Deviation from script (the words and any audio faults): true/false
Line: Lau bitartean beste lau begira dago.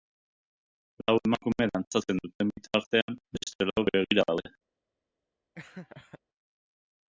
true